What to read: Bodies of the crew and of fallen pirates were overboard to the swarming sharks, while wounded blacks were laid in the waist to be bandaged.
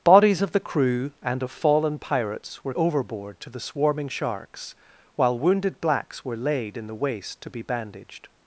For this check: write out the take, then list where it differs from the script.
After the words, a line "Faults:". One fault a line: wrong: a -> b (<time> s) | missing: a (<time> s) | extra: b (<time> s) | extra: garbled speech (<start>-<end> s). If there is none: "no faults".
Bodies of the crew and of fallen pirates were overboard to the swarming sharks, while wounded blacks were laid in the waist to be bandaged.
Faults:
no faults